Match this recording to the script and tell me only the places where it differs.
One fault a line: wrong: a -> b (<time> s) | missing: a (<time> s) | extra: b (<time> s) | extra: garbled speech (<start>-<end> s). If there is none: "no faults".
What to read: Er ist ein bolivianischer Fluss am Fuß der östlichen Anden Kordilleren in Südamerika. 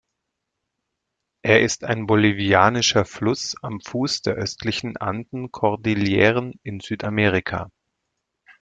no faults